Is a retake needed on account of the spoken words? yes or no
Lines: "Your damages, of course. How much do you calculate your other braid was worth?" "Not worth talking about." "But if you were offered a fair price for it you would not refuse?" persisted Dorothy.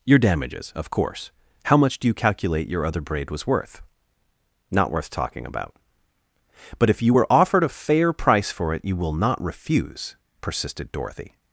yes